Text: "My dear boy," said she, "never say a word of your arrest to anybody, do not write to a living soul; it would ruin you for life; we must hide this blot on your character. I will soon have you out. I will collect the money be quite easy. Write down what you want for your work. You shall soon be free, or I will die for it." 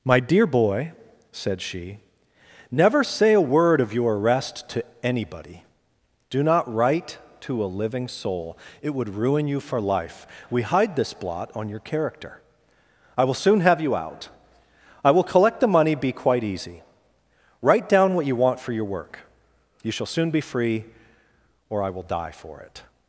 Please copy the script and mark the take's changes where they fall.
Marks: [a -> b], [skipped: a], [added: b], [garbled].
"My dear boy," said she, "never say a word of your arrest to anybody, do not write to a living soul; it would ruin you for life; we [skipped: must] hide this blot on your character. I will soon have you out. I will collect the money be quite easy. Write down what you want for your work. You shall soon be free, or I will die for it."